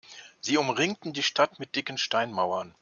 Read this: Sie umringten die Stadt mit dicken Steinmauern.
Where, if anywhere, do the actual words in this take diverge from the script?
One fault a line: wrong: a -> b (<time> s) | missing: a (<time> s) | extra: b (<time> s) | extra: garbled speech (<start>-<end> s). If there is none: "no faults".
no faults